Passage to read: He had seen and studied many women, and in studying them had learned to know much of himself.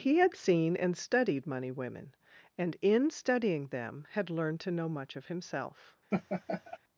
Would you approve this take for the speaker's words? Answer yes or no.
no